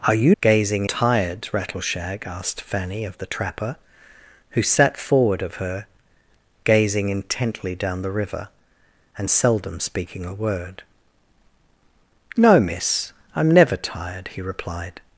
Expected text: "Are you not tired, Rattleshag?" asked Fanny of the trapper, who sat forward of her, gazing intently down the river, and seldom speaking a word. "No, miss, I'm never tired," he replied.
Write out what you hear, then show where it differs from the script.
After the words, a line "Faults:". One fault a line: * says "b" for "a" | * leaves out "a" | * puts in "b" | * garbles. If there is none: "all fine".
"Are you gazing tired, Rattleshag?" asked Fanny of the trapper, who sat forward of her, gazing intently down the river, and seldom speaking a word. "No, miss, I'm never tired," he replied.
Faults:
* says "gazing" for "not"